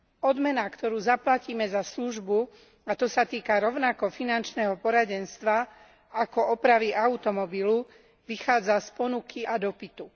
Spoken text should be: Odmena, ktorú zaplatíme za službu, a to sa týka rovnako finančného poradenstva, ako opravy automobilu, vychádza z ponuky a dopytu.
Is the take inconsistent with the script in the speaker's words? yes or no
no